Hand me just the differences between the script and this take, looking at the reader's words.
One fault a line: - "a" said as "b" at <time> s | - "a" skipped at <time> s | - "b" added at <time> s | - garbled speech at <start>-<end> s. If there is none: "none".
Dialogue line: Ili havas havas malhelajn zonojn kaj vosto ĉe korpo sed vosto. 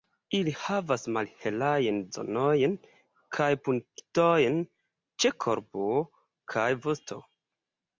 - "havas" skipped at 1.0 s
- "vosto" said as "punktojn" at 3.7 s
- "sed" said as "kaj" at 6.6 s